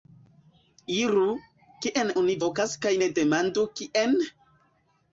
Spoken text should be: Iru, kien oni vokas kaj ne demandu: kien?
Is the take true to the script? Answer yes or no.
yes